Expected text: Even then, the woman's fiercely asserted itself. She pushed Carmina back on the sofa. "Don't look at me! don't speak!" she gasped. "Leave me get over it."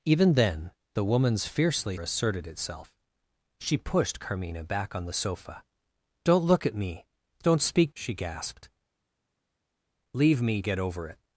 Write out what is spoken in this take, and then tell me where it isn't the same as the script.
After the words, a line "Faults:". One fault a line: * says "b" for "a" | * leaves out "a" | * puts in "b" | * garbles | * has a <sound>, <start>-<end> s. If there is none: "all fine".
Even then, the woman's fiercely asserted itself. She pushed Carmina back on the sofa. "Don't look at me! don't speak!" she gasped. "Leave me get over it."
Faults:
all fine